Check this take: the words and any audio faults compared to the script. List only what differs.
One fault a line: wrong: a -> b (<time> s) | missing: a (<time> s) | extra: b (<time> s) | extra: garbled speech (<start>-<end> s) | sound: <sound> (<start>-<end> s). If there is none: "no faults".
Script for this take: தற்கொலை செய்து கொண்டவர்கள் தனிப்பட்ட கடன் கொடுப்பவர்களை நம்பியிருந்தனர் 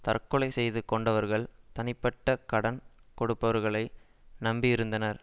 no faults